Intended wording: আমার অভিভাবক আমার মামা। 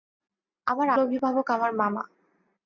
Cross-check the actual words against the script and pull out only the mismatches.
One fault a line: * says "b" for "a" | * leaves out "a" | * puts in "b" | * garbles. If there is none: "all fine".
all fine